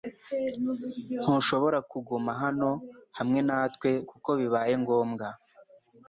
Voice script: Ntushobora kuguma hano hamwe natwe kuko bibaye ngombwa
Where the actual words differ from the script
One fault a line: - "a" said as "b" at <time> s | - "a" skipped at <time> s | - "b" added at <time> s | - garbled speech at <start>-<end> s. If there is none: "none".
none